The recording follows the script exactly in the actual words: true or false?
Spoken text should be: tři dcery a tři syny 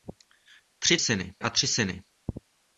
false